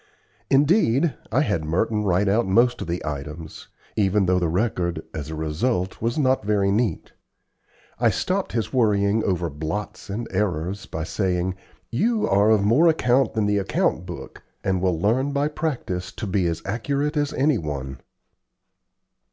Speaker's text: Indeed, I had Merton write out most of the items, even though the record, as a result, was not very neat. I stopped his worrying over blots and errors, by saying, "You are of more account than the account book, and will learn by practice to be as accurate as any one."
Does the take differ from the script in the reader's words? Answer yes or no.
no